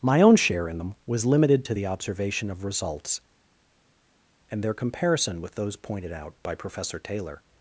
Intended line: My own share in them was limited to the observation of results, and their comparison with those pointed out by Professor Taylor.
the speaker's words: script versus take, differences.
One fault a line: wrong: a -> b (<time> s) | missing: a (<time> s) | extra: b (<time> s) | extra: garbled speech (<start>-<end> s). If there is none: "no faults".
no faults